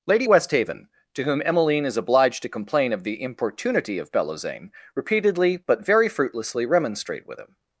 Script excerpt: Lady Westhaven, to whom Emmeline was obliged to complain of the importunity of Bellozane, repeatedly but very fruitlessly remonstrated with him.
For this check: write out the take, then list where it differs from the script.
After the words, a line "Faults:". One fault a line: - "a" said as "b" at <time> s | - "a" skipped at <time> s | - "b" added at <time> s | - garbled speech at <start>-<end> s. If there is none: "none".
Lady Westhaven, to whom Emmeline is obliged to complain of the importunity of Bellozane, repeatedly but very fruitlessly remonstrate with him.
Faults:
- "was" said as "is" at 1.9 s
- "remonstrated" said as "remonstrate" at 6.7 s